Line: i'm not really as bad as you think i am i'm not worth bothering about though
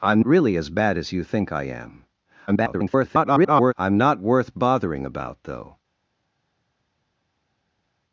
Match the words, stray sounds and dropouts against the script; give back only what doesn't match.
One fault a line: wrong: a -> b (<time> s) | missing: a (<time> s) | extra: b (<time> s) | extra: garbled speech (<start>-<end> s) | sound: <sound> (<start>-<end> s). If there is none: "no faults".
missing: not (0.2 s)
extra: garbled speech (2.5-3.7 s)